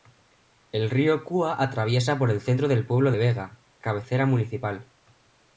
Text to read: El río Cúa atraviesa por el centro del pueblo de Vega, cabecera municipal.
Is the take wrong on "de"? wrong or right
wrong